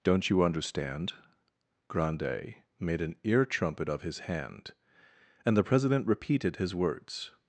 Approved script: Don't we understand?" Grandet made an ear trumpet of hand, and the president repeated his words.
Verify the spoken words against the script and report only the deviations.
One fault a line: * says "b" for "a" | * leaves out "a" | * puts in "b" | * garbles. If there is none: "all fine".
* says "you" for "we"
* puts in "his"